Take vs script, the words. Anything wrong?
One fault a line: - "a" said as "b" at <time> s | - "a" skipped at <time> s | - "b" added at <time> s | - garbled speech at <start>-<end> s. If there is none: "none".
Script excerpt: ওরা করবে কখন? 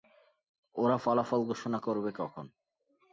- "ফলাফল ঘোষণা" added at 1.0 s